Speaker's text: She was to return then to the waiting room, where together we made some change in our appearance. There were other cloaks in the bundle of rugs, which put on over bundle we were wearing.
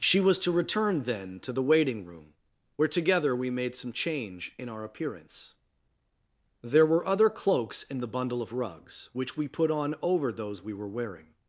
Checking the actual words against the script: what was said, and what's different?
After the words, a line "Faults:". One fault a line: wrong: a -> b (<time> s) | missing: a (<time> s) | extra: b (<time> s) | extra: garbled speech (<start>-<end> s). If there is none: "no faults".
She was to return then to the waiting room, where together we made some change in our appearance. There were other cloaks in the bundle of rugs, which we put on over those we were wearing.
Faults:
extra: we (9.4 s)
wrong: bundle -> those (10.3 s)